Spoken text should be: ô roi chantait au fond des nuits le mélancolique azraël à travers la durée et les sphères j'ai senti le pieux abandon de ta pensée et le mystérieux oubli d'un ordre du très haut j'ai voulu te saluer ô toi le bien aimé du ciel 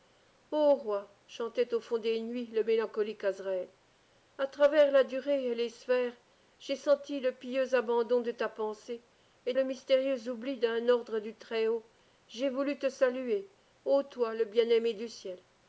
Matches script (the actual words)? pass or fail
pass